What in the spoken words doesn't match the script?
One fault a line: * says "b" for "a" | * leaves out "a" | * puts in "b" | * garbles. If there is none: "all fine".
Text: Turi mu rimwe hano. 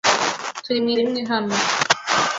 all fine